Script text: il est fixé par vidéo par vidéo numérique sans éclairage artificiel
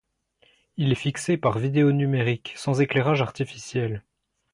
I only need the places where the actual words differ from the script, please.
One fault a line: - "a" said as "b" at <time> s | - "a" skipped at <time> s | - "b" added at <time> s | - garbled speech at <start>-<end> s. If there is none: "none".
- "par vidéo" skipped at 1.9 s